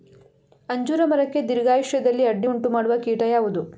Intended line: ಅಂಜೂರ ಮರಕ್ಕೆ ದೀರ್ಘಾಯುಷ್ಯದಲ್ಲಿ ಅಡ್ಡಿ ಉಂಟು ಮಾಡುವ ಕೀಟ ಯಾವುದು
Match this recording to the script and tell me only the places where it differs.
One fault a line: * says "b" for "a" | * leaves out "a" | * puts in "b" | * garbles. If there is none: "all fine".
all fine